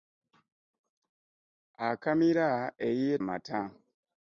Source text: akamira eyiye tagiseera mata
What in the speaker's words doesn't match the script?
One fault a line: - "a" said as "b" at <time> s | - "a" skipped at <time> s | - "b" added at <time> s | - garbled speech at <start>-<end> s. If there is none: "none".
- "tagiseera" skipped at 3.1 s